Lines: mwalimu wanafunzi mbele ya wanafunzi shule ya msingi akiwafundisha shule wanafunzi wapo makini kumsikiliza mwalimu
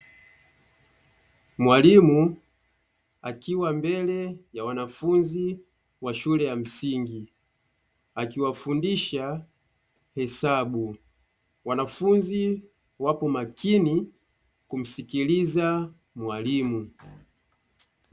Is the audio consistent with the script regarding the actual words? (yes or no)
no